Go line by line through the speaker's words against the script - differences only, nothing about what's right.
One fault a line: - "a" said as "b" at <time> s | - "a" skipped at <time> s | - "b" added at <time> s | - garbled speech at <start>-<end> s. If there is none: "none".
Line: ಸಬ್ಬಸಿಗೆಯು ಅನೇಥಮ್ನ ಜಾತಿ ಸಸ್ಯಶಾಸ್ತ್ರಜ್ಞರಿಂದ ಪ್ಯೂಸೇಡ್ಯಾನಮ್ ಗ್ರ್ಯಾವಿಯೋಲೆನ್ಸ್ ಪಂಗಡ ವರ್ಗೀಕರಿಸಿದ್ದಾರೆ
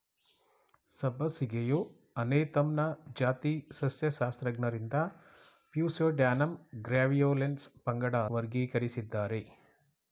none